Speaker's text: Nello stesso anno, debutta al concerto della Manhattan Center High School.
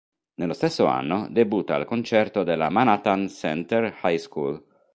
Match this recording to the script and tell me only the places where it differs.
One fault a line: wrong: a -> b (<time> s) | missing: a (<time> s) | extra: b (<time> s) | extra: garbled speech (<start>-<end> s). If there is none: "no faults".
no faults